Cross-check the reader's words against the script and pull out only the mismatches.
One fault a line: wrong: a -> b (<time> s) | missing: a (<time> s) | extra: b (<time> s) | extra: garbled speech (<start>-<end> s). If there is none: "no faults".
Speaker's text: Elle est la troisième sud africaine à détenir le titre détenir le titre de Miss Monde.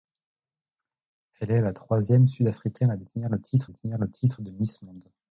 no faults